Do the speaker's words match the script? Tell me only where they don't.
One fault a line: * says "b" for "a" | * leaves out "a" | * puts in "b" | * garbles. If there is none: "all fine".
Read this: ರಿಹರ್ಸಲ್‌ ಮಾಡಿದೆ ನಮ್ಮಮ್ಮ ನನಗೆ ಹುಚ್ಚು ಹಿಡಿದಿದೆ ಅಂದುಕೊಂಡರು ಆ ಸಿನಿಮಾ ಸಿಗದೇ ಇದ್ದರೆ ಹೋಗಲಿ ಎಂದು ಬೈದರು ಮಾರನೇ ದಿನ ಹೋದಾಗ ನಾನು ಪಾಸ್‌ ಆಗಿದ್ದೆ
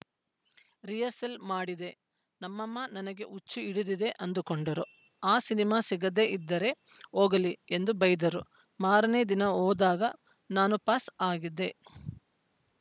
all fine